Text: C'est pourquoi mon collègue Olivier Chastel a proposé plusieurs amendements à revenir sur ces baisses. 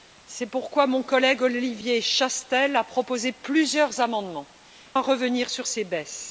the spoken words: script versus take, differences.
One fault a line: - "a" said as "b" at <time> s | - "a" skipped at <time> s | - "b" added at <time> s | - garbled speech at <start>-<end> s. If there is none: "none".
none